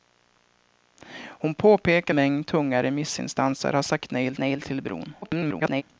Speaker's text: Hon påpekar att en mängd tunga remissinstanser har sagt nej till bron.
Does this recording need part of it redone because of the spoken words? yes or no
yes